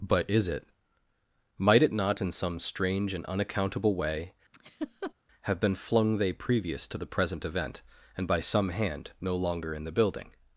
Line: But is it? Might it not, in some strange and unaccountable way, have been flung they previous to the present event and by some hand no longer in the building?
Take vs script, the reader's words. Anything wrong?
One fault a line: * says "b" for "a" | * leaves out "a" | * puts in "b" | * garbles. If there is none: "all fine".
all fine